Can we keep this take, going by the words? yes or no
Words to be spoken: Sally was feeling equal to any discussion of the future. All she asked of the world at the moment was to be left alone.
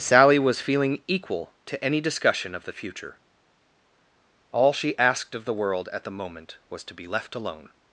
yes